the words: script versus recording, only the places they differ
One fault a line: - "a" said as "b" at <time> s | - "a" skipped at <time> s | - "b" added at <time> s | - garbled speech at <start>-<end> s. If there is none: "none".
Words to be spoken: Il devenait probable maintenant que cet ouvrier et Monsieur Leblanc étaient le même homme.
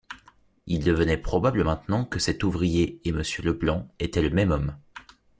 none